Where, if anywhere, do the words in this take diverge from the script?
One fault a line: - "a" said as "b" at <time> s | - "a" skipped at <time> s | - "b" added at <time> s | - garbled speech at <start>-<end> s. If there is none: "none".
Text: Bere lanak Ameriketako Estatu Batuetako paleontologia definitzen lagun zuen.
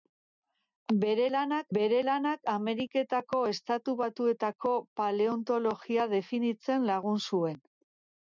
- "bere lanak" added at 1.7 s